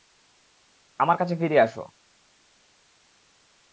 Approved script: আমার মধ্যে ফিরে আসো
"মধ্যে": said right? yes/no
no